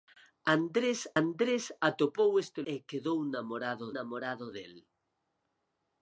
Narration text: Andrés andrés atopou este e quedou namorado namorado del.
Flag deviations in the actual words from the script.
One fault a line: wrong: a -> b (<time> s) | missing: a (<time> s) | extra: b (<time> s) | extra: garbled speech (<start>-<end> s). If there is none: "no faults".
no faults